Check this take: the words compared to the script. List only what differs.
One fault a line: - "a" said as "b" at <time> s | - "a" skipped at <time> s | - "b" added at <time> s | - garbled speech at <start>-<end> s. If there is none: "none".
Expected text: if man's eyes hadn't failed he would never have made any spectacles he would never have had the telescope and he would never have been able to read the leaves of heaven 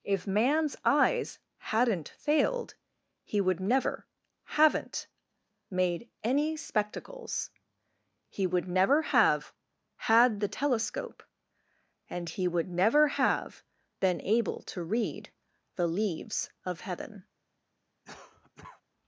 - "have" said as "haven't" at 4.4 s